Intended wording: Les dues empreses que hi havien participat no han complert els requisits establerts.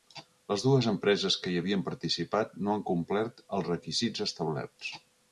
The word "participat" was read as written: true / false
true